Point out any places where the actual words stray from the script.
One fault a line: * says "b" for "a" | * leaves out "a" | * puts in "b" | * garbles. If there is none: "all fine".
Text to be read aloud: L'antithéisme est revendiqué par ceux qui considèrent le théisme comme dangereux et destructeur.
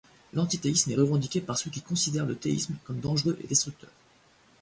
all fine